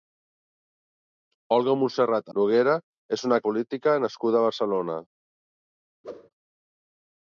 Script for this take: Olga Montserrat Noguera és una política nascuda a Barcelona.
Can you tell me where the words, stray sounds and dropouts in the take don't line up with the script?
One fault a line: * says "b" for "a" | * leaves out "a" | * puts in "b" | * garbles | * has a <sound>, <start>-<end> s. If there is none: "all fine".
* has a whoosh, 6.0-6.3 s